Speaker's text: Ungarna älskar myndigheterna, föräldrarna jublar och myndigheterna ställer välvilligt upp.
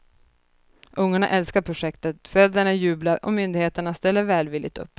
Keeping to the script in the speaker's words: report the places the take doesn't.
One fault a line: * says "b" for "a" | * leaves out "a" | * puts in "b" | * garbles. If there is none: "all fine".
* says "projektet" for "myndigheterna"